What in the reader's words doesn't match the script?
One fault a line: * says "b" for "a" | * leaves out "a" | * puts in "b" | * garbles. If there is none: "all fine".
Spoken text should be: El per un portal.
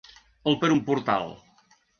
all fine